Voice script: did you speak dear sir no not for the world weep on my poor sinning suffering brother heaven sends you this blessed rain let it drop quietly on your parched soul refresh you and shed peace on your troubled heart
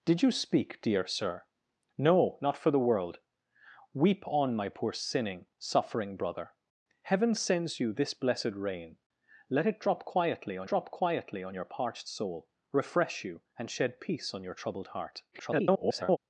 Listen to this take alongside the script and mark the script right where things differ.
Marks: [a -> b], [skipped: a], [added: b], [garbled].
did you speak dear sir no not for the world weep on my poor sinning suffering brother heaven sends you this blessed rain let it drop quietly on [added: drop quietly on] your parched soul refresh you and shed peace on your troubled heart [garbled]